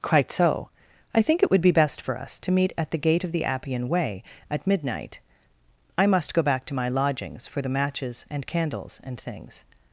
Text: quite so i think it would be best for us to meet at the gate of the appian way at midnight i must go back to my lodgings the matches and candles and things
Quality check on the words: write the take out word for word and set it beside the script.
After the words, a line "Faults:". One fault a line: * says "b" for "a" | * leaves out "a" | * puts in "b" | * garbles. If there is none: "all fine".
quite so i think it would be best for us to meet at the gate of the appian way at midnight i must go back to my lodgings for the matches and candles and things
Faults:
* puts in "for"